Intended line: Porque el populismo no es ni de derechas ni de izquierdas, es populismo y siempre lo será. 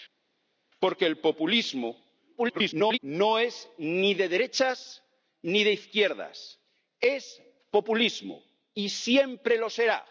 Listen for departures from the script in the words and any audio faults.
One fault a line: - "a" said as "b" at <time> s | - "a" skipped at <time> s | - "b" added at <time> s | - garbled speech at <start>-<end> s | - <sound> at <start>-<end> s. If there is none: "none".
- garbled speech at 2.4-3.0 s